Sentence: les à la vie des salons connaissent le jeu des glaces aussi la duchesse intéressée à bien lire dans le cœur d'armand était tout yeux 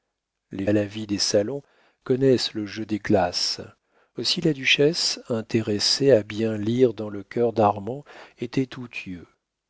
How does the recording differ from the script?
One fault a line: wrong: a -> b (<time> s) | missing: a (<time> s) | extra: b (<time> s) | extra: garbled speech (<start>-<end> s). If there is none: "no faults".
no faults